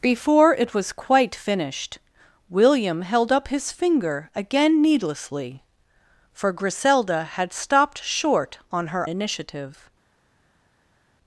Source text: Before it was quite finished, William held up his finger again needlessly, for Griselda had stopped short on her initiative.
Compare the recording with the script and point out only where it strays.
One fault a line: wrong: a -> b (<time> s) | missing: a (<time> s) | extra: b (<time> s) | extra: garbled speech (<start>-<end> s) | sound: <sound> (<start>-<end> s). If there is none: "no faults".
no faults